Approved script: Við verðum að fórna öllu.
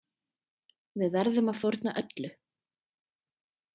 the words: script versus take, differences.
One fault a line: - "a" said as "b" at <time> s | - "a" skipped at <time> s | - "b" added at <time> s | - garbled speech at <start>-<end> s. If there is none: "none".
none